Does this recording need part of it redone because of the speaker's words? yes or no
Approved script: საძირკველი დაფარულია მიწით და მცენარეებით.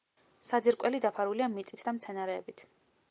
no